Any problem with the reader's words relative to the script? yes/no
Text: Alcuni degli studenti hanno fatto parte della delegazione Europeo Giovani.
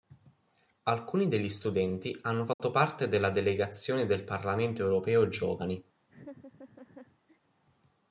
yes